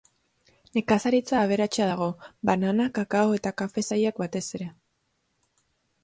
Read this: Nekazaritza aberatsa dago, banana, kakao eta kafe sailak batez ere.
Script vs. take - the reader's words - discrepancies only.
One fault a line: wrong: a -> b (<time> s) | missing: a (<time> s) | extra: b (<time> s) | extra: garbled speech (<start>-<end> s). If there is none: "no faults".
no faults